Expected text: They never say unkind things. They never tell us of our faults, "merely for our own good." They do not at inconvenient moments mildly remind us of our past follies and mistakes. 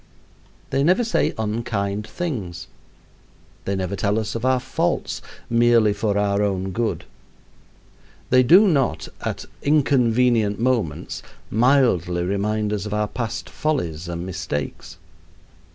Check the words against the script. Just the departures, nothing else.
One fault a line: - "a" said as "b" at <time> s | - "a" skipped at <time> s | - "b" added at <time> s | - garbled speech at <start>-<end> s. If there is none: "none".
none